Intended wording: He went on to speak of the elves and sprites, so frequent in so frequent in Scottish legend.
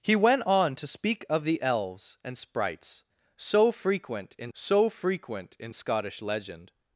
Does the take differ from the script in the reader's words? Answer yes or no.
no